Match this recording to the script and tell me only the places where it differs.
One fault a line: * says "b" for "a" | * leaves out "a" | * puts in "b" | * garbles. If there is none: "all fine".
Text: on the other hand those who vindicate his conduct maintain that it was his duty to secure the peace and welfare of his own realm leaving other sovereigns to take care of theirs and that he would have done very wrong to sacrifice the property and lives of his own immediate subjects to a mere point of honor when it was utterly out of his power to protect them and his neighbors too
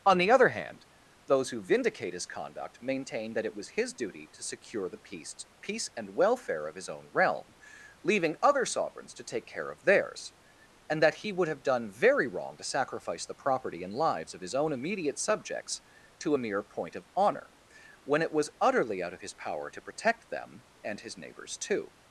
* puts in "peace"